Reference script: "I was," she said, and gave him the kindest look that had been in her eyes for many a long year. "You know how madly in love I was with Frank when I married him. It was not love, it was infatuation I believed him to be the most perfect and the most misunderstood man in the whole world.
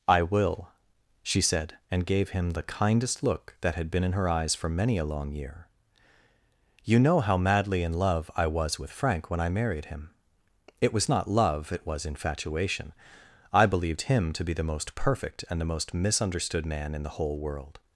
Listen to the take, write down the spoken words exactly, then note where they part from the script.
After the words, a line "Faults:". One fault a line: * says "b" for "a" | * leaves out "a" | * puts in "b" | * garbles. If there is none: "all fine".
"I will," she said, and gave him the kindest look that had been in her eyes for many a long year. "You know how madly in love I was with Frank when I married him. It was not love, it was infatuation I believed him to be the most perfect and the most misunderstood man in the whole world.
Faults:
* says "will" for "was"